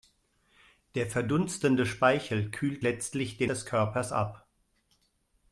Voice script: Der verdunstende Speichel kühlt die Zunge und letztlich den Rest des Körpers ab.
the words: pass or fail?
fail